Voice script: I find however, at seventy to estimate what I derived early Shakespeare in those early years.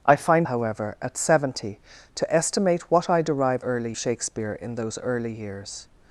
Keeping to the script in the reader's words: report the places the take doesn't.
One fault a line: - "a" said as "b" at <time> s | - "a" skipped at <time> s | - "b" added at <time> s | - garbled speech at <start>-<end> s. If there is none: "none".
none